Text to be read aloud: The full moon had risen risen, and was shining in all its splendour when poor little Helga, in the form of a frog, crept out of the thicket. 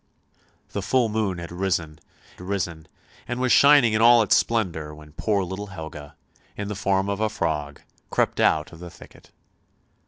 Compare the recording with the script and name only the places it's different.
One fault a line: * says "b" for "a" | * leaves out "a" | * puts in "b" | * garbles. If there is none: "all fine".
all fine